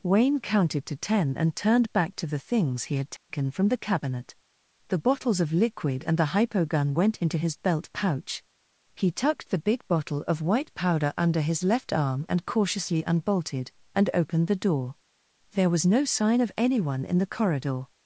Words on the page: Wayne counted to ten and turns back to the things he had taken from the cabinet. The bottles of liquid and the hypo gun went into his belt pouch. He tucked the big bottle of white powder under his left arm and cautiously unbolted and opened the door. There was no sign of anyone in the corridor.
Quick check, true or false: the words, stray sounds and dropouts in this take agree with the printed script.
false